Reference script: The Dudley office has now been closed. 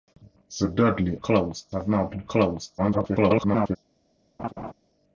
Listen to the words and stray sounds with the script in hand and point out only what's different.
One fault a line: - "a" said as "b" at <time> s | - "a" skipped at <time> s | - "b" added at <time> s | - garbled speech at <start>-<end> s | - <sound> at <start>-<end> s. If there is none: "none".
- "office" said as "closed" at 1.2 s
- garbled speech at 2.8-3.8 s
- laugh at 4.4-4.7 s